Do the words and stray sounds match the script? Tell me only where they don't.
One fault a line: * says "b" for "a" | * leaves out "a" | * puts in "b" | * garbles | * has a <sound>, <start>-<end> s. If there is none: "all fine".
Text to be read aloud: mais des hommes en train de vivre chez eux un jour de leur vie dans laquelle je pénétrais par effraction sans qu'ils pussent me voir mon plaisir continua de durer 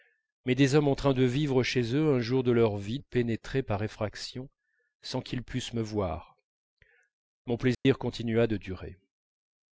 * leaves out "dans laquelle je"
* has a dropout, 7.7-7.9 s